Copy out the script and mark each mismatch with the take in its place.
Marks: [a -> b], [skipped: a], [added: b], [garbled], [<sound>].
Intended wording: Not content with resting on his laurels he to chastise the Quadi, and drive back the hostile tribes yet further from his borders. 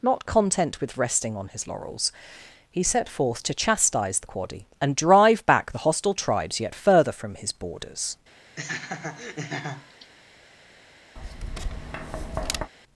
Not content with resting on his laurels he [added: set forth] to chastise the Quadi, and drive back the hostile tribes yet further from his borders. [laugh] [tap]